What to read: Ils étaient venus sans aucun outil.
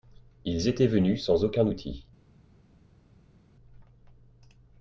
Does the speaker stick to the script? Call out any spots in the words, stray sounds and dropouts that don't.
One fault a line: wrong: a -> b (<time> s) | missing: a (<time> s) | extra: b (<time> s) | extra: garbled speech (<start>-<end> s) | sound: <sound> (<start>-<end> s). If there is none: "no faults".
no faults